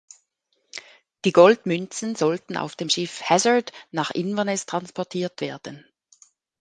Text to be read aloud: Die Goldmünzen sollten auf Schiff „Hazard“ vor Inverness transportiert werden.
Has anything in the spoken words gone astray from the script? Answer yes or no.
yes